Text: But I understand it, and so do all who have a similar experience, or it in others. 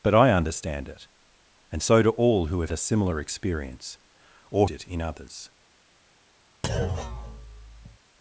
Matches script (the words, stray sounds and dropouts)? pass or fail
fail